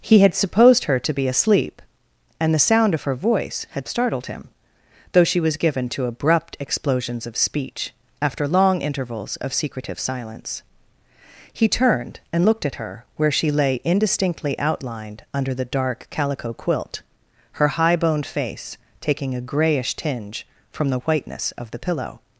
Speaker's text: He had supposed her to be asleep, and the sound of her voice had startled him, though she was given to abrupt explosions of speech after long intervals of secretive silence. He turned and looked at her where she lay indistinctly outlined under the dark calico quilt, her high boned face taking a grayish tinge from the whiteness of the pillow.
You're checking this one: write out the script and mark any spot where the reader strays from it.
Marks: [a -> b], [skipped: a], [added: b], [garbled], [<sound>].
He had supposed her to be asleep, and the sound of her voice had startled him, though she was given to abrupt explosions of speech after long intervals of secretive silence. He turned and looked at her where she lay indistinctly outlined under the dark calico quilt, her high boned face taking a grayish tinge from the whiteness of the pillow.